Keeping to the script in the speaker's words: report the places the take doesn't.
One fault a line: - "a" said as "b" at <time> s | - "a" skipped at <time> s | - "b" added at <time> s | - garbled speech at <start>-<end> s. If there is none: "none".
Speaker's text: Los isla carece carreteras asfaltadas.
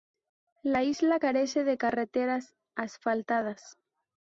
- "Los" said as "La" at 0.6 s
- "de" added at 1.6 s